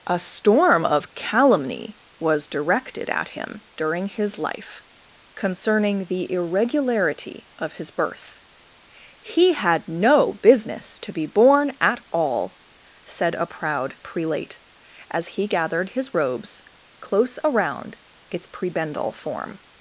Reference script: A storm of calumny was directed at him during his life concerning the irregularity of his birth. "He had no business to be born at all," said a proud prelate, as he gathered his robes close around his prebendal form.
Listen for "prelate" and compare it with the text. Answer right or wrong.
right